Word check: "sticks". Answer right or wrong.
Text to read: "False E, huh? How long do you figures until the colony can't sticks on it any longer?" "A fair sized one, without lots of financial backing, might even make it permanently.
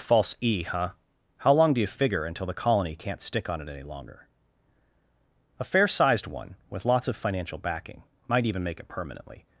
wrong